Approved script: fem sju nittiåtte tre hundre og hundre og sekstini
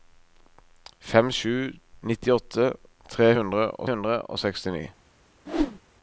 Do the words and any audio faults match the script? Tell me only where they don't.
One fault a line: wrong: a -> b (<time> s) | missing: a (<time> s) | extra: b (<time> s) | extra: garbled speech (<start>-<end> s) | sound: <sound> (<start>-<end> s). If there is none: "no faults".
sound: whoosh (5.5-5.8 s)